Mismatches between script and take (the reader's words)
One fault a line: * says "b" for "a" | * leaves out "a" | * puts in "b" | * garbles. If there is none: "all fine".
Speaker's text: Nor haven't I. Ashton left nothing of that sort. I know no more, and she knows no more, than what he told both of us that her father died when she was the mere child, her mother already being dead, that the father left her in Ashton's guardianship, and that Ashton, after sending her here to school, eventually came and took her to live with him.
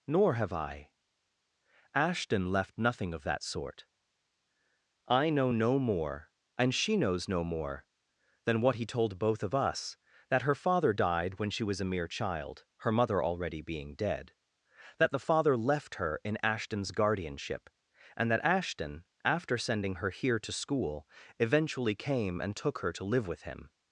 * says "have" for "haven't"
* says "a" for "the"